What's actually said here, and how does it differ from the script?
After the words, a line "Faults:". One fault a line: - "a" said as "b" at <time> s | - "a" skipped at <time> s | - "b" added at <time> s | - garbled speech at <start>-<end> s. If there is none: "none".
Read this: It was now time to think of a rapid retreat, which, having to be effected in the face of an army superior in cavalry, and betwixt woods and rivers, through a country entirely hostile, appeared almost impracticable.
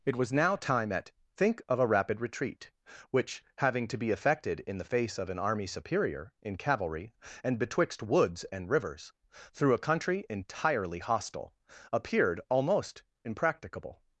It was now time at think of a rapid retreat, which, having to be effected in the face of an army superior in cavalry, and betwixt woods and rivers, through a country entirely hostile, appeared almost impracticable.
Faults:
- "to" said as "at" at 0.9 s